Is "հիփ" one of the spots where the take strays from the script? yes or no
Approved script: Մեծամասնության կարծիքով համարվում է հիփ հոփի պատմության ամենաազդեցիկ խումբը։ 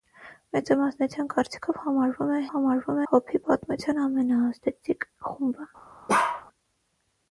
yes